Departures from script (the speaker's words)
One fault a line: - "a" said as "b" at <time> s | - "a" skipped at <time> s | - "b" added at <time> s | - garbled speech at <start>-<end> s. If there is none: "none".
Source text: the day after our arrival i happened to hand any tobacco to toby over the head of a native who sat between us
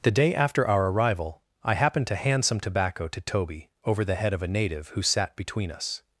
- "any" said as "some" at 2.4 s